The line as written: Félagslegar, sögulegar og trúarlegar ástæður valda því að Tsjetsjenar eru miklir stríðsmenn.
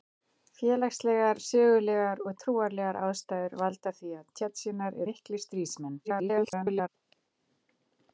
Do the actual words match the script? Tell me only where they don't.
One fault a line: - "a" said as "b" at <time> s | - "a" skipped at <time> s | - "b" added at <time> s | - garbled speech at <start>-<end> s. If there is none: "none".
- "eru" skipped at 5.0 s
- garbled speech at 6.0-6.9 s